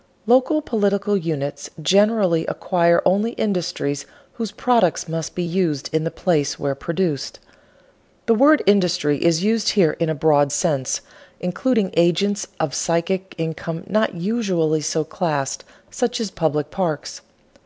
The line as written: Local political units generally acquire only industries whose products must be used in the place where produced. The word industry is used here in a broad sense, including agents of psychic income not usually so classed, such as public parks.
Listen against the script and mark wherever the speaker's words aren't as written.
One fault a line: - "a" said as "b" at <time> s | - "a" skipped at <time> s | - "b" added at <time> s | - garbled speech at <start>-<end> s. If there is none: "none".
none